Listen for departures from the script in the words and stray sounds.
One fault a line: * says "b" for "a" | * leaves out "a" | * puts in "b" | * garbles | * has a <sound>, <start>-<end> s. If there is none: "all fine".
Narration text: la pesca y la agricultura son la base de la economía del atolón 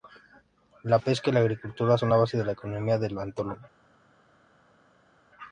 all fine